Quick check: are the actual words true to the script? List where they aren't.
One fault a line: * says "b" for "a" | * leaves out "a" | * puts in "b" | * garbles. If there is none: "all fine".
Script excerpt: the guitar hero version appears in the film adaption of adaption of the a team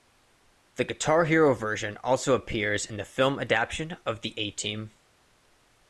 * puts in "also"
* leaves out "adaption of"